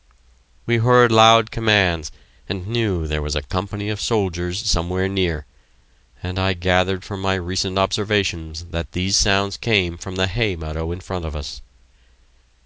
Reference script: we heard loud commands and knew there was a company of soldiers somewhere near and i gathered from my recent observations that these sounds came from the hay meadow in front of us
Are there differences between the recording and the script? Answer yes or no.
no